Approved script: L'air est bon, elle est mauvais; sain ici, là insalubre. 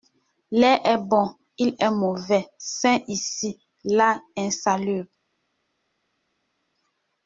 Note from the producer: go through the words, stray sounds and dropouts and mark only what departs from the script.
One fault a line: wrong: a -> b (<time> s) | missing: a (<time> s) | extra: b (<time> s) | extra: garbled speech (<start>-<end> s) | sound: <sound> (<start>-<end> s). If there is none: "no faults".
wrong: elle -> il (1.6 s)